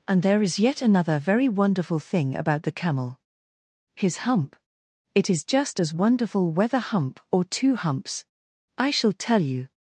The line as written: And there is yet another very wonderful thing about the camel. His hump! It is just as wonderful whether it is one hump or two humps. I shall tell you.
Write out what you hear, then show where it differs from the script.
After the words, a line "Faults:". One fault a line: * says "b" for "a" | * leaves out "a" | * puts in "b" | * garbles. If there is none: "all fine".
And there is yet another very wonderful thing about the camel. His hump! It is just as wonderful whether hump or two humps. I shall tell you.
Faults:
* leaves out "it is one"